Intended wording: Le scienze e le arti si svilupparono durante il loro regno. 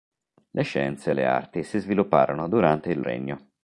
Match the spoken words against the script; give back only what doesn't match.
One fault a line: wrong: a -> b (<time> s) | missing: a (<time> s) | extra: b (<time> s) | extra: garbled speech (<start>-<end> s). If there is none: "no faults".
missing: loro (3.0 s)